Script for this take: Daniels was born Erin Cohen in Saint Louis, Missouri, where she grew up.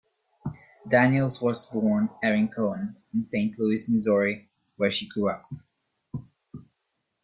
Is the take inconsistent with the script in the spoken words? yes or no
no